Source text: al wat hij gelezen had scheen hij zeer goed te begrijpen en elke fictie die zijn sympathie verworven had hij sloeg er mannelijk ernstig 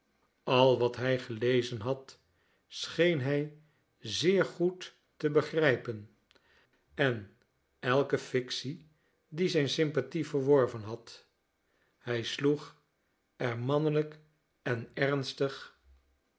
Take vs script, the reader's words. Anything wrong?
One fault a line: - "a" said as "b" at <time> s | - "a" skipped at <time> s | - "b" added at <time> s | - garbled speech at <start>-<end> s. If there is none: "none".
- "en" added at 14.6 s